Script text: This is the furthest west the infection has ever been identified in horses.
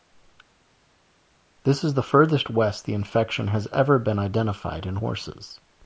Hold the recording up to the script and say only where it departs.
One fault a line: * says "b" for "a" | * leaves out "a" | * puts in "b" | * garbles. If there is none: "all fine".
all fine